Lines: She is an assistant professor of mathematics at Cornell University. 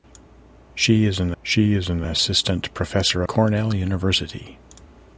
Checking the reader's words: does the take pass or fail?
fail